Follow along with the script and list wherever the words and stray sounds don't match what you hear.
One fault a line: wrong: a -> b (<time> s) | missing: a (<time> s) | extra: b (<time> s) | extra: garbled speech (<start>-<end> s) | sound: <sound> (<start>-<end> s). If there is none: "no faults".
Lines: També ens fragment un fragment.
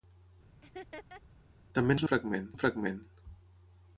sound: laugh (0.6-1.2 s)